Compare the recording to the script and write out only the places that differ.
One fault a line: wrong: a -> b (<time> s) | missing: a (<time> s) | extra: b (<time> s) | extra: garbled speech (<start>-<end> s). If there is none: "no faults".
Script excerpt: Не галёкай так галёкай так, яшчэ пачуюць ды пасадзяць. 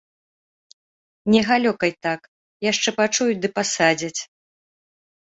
missing: галёкай так (2.2 s)